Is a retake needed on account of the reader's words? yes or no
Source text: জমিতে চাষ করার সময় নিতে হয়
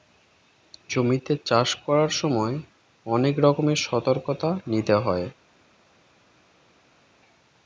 yes